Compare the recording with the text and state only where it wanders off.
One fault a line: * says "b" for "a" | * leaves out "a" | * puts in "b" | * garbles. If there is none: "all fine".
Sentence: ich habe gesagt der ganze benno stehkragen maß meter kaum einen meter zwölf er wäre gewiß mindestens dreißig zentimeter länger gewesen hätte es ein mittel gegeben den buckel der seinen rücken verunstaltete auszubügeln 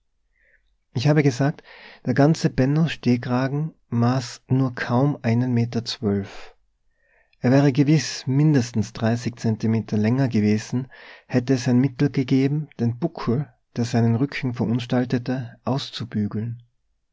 * says "nur" for "meter"